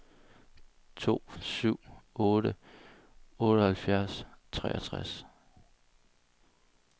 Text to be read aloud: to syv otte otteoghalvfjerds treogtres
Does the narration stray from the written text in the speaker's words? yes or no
no